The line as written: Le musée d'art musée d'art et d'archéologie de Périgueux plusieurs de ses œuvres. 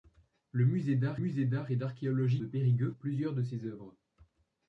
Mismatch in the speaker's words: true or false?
false